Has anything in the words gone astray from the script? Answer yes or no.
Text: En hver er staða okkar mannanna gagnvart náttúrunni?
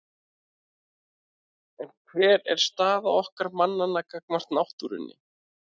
no